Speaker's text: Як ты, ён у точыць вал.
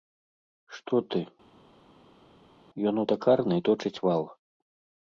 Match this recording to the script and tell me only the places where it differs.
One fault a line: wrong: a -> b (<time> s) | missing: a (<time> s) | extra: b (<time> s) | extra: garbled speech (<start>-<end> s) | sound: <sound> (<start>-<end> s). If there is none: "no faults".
wrong: Як -> Што (0.8 s)
extra: такарнай (3.1 s)